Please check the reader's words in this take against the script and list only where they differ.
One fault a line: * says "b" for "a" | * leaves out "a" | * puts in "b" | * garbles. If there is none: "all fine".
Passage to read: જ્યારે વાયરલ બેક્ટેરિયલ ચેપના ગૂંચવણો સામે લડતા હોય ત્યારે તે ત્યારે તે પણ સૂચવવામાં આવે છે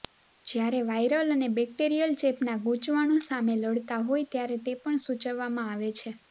* puts in "અને"
* leaves out "ત્યારે તે"